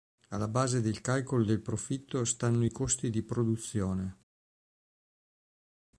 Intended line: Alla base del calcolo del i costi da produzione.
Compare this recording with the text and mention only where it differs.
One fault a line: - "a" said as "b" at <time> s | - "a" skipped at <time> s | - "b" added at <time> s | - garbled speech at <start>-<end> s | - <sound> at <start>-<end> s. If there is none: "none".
- "profitto stanno" added at 1.6 s
- "da" said as "di" at 3.1 s